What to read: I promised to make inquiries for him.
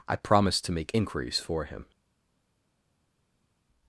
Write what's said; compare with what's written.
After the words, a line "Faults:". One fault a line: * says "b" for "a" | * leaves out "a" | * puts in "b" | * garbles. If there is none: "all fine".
I promised to make inquiries for him.
Faults:
all fine